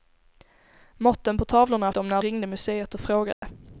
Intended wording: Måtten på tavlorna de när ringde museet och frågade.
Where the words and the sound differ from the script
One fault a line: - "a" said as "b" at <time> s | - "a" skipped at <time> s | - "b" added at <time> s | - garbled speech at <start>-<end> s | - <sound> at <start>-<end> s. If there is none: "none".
- dropout at 3.3-3.4 s